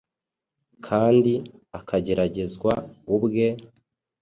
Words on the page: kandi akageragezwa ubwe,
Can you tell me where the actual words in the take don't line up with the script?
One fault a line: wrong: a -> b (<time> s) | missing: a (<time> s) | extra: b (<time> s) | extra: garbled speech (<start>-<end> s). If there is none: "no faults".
no faults